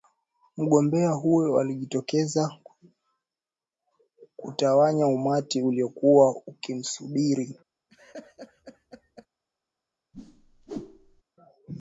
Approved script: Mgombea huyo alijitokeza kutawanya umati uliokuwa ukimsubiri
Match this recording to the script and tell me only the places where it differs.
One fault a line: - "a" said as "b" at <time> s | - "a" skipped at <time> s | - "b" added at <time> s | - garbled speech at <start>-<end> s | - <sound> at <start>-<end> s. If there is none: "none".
- laugh at 7.9-9.3 s
- whoosh at 10.1-11.2 s